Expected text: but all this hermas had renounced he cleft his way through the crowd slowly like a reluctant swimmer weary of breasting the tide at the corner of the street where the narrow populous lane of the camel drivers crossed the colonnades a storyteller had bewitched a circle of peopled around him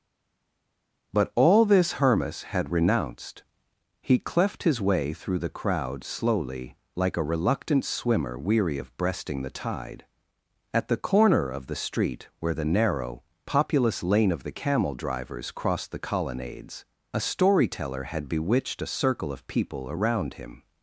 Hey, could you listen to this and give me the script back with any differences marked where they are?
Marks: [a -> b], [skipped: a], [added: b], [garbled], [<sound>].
but all this hermas had renounced he cleft his way through the crowd slowly like a reluctant swimmer weary of breasting the tide at the corner of the street where the narrow populous lane of the camel drivers crossed the colonnades a storyteller had bewitched a circle of [peopled -> people] around him